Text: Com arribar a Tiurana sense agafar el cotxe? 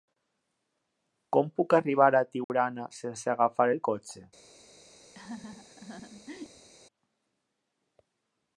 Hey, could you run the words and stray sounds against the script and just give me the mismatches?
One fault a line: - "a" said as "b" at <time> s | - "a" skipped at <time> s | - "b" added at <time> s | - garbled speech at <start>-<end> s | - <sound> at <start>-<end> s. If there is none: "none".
- "puc" added at 1.6 s
- dropout at 2.4-2.5 s
- laugh at 5.1-6.7 s